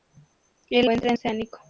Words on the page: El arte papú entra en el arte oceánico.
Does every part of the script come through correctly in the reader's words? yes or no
no